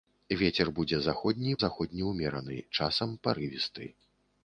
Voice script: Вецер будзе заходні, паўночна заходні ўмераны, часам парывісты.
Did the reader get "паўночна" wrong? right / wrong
wrong